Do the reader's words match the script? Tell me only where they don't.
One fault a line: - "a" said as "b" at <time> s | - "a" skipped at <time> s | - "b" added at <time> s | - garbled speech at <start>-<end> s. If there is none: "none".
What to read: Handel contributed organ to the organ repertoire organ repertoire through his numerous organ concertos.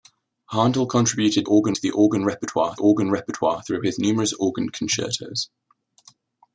none